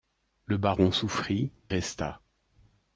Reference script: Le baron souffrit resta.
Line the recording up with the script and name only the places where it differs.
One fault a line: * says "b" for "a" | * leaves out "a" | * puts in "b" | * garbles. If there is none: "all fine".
all fine